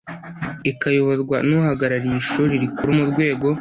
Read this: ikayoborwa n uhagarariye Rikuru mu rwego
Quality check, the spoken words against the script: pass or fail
fail